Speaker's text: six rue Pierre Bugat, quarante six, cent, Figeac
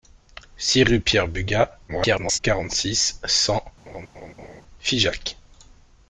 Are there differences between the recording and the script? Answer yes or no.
yes